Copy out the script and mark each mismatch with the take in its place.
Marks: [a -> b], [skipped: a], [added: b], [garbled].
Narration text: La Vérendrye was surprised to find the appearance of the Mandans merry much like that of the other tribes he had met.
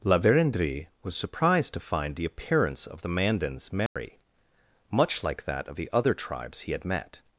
La Vérendrye was surprised to find the appearance of the Mandans merry much like that of the other tribes he had met.